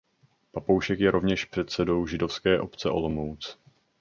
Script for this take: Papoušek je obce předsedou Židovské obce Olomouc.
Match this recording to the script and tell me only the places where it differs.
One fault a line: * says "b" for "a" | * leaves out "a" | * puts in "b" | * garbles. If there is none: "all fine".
* says "rovněž" for "obce"